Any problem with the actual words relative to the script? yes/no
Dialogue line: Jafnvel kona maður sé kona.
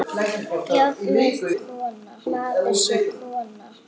no